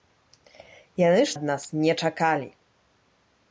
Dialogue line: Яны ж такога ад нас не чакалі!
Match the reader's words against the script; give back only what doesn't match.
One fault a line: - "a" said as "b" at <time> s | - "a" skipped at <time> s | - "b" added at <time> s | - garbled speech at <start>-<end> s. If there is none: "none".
- "такога" skipped at 1.4 s